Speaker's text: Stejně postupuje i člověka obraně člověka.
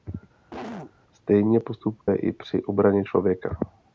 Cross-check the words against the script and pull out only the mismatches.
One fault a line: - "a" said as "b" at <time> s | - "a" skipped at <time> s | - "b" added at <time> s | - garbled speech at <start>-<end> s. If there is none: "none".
- "člověka" said as "při" at 2.3 s